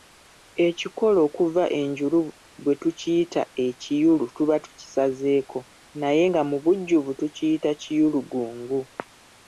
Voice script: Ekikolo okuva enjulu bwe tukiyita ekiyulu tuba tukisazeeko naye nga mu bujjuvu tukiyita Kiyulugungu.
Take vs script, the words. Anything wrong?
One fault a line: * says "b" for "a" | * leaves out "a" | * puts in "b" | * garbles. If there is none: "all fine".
all fine